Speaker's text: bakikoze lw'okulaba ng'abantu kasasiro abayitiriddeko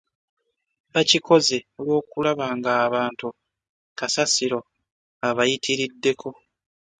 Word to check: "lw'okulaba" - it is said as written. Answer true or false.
true